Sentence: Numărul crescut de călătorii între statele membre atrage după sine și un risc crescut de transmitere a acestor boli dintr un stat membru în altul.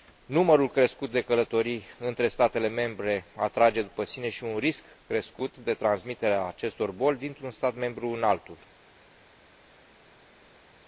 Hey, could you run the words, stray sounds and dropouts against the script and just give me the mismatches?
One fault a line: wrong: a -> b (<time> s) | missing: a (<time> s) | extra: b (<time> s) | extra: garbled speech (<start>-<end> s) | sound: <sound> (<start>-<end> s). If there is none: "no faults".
no faults